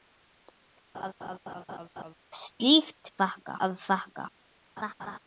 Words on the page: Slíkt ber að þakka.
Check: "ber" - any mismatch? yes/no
yes